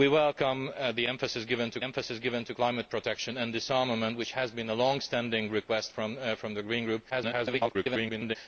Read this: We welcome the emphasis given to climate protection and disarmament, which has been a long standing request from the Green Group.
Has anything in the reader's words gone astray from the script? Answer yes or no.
yes